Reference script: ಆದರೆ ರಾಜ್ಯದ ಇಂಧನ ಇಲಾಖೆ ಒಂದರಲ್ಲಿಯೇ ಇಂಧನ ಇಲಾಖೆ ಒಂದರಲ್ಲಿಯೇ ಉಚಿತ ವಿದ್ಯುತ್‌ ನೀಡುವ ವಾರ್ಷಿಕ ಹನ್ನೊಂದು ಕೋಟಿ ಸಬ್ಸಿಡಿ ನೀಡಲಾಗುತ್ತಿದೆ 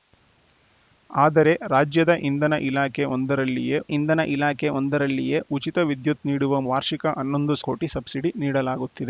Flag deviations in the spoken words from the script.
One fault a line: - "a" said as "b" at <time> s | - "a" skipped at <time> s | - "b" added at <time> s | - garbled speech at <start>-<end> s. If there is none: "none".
none